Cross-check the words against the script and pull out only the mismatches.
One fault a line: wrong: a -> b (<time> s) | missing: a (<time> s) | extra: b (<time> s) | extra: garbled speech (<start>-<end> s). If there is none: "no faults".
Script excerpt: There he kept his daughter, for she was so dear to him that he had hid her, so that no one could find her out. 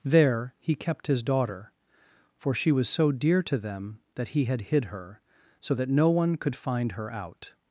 wrong: him -> them (3.6 s)